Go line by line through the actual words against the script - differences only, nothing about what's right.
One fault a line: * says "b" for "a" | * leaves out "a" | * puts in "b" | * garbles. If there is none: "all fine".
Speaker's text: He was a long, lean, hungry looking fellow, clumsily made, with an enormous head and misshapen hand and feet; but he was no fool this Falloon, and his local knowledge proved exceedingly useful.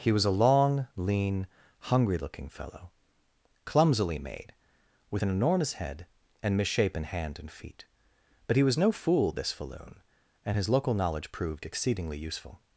all fine